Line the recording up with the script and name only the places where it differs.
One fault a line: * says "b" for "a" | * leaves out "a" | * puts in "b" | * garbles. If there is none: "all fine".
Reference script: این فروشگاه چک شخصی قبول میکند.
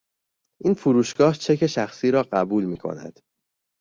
* puts in "را"